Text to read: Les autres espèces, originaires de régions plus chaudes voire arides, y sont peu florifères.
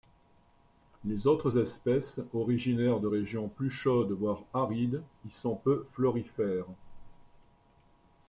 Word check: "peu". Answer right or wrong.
right